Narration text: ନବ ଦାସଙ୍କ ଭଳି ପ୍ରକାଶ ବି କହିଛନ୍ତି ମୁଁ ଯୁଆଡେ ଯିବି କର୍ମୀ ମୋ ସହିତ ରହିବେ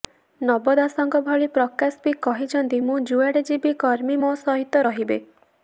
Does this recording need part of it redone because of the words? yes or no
no